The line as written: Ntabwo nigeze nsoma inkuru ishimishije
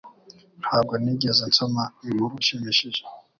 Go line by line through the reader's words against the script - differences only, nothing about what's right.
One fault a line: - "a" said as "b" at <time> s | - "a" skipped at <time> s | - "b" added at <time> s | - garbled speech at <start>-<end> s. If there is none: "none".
none